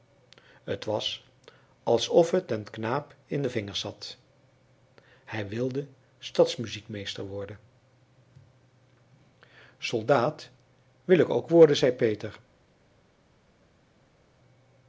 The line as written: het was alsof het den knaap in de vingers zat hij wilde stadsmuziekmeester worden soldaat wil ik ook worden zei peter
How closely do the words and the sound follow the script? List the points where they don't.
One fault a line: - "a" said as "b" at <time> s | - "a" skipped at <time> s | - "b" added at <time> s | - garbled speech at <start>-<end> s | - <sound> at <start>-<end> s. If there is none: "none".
none